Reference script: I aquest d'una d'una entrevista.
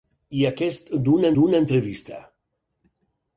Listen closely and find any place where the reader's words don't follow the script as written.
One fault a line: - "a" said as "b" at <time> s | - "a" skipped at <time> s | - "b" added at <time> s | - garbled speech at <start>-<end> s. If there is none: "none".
none